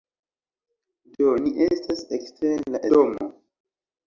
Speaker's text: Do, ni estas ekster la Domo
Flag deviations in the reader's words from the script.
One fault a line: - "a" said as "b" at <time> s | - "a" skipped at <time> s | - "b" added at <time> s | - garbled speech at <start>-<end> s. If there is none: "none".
none